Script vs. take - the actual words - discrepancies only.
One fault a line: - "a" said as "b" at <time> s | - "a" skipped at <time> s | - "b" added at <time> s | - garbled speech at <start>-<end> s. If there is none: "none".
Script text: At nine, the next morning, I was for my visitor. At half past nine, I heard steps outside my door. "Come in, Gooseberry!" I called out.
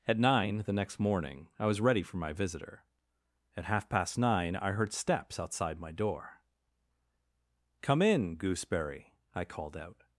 - "ready" added at 1.8 s